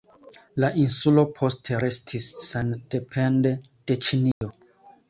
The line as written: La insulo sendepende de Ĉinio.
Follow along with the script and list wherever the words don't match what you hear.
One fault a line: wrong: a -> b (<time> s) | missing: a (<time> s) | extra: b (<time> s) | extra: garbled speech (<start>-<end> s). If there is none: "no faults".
extra: poste restis (1.4 s)